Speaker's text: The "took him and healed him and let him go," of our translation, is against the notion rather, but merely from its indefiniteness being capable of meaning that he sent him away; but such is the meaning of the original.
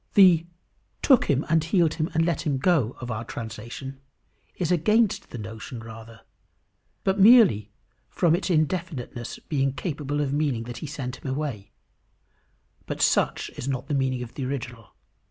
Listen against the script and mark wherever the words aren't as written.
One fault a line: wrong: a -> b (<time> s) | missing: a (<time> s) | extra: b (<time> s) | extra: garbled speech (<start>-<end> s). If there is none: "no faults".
extra: not (13.7 s)